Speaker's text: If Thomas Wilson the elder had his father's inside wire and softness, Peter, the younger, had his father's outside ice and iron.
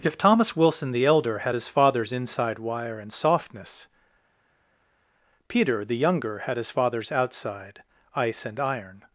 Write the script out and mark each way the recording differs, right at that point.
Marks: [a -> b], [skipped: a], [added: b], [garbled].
If Thomas Wilson the elder had his father's inside wire and softness, Peter, the younger, had his father's outside ice and iron.